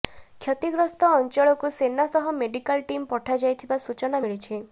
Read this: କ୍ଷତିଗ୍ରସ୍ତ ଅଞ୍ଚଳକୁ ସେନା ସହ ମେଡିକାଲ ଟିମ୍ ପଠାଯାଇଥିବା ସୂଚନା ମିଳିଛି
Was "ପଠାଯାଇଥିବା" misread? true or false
false